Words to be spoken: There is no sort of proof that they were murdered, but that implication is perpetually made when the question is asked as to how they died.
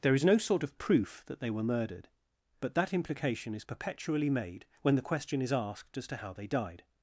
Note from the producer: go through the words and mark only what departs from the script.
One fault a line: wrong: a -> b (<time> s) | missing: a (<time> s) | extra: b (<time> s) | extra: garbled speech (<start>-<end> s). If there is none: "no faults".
no faults